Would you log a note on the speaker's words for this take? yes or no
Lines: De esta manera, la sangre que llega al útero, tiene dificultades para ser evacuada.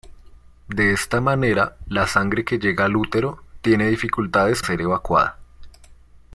yes